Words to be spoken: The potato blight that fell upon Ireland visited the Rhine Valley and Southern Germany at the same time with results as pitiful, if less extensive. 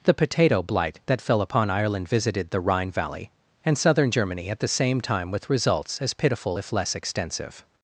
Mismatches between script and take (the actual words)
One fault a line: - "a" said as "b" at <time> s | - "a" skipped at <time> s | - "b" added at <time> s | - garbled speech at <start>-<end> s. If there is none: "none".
none